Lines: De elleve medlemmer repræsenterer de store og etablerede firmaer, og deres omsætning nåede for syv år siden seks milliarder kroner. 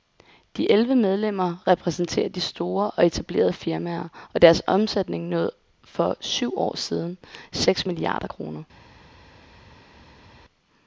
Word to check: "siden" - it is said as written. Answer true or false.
true